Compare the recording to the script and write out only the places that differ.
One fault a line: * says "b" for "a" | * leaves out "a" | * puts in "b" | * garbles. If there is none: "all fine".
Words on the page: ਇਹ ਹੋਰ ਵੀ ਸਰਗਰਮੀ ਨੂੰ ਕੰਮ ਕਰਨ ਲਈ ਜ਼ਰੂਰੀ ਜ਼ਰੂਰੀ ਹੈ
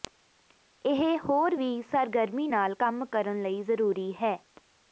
* says "ਨਾਲ" for "ਨੂੰ"
* leaves out "ਜ਼ਰੂਰੀ"